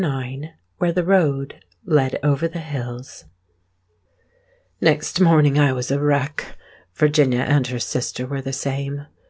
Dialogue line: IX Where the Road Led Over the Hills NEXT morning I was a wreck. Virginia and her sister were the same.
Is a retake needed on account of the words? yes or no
no